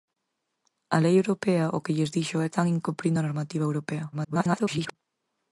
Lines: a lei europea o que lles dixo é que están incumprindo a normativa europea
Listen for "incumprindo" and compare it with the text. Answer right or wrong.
right